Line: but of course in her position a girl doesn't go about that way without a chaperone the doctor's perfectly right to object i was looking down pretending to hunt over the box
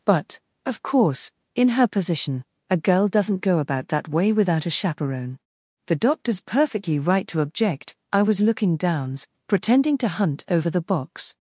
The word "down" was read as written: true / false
false